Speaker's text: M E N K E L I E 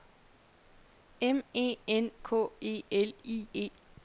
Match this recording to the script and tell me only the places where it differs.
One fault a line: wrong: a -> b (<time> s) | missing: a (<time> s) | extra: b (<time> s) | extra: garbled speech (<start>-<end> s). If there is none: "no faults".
no faults